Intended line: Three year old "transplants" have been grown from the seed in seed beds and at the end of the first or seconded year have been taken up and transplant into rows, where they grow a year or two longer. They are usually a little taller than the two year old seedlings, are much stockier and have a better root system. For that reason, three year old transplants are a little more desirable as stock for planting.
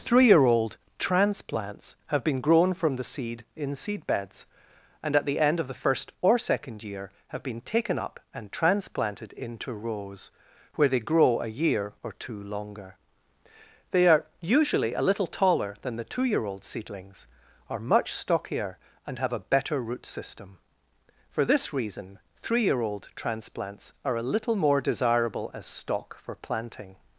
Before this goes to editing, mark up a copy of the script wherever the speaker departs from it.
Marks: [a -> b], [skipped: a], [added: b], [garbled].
Three year old "transplants" have been grown from the seed in seed beds and at the end of the first or [seconded -> second] year have been taken up and [transplant -> transplanted] into rows, where they grow a year or two longer. They are usually a little taller than the two year old seedlings, are much stockier and have a better root system. For [that -> this] reason, three year old transplants are a little more desirable as stock for planting.